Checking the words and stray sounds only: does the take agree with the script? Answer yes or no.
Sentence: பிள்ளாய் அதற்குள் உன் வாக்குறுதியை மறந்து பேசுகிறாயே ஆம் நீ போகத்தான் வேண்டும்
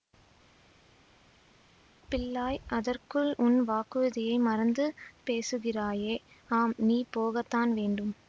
yes